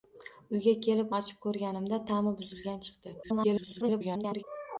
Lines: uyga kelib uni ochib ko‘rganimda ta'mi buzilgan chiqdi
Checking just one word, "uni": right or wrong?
wrong